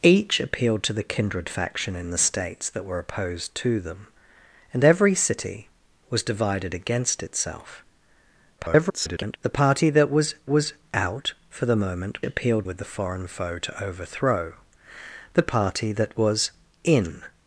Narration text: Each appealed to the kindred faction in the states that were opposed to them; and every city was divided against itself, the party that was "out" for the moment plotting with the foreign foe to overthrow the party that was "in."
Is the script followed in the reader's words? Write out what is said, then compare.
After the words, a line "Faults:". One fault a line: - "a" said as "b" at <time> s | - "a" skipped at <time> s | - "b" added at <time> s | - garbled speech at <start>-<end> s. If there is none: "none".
Each appealed to the kindred faction in the states that were opposed to them; and every city was divided against itself, [garbled] the party that was was "out" for the moment appealed with the foreign foe to overthrow the party that was "in."
Faults:
- garbled speech at 8.6-9.4 s
- "was" added at 10.5 s
- "plotting" said as "appealed" at 12.2 s